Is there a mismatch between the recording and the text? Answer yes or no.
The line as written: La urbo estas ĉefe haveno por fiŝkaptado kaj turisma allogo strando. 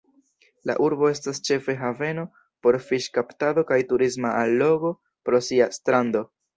yes